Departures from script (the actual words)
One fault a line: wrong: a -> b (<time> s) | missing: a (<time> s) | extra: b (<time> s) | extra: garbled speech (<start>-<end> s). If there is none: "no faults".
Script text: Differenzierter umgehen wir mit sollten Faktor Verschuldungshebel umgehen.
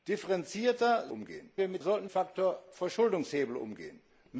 no faults